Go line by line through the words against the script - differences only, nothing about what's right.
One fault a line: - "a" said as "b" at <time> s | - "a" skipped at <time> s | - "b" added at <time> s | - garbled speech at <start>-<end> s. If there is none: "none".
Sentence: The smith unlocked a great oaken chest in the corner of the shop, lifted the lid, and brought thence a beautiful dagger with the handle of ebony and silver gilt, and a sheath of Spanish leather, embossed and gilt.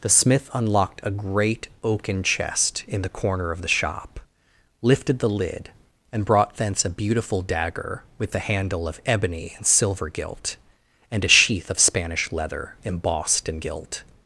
none